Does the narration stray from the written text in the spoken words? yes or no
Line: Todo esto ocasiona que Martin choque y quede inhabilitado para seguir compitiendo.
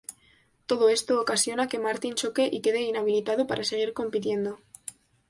no